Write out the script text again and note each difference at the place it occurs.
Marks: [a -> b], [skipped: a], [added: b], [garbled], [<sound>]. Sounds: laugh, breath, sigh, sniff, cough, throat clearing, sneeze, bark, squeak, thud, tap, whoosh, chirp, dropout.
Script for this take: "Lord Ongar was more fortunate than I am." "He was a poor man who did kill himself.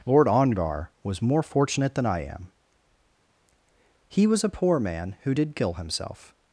"Lord Ongar was more fortunate than I am." "He was a poor man who did kill himself.